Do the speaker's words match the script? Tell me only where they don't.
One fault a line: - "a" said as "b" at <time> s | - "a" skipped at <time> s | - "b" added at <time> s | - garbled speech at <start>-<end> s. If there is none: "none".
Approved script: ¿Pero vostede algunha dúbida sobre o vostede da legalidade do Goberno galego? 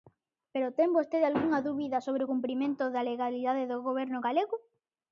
- "ten" added at 0.8 s
- "vostede" said as "cumprimento" at 2.3 s